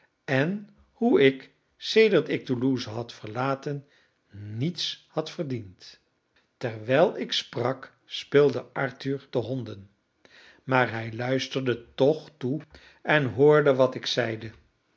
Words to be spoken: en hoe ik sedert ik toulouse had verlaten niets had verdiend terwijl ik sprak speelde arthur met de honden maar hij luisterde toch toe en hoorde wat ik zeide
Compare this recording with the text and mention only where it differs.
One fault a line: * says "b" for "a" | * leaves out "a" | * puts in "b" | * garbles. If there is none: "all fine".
* leaves out "met"